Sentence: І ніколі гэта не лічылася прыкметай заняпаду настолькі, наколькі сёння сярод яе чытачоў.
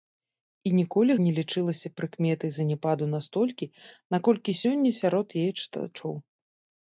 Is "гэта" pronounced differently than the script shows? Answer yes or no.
yes